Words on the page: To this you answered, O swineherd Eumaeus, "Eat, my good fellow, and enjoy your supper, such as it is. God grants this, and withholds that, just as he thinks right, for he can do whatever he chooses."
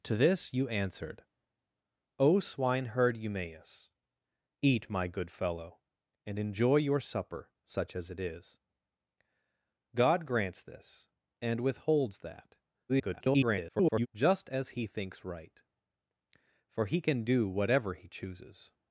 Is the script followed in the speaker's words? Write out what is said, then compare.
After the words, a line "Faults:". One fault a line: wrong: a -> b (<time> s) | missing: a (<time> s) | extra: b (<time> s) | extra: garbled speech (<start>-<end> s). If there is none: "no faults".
To this you answered, O swineherd Eumaeus, "Eat, my good fellow, and enjoy your supper, such as it is. God grants this, and withholds that, [garbled] just as he thinks right, for he can do whatever he chooses."
Faults:
extra: garbled speech (12.9-14.1 s)